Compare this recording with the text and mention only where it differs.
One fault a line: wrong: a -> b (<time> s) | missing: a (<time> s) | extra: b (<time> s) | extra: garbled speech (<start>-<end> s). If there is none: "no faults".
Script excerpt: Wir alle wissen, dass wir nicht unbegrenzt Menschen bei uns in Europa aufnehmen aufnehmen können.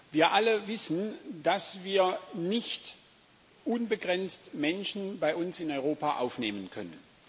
missing: aufnehmen (6.7 s)